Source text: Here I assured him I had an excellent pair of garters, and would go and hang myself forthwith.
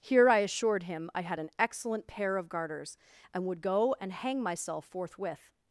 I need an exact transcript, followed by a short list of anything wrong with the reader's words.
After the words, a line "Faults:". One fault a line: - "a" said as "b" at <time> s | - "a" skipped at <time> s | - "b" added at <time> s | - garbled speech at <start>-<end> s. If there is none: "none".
Here I assured him I had an excellent pair of garters, and would go and hang myself forthwith.
Faults:
none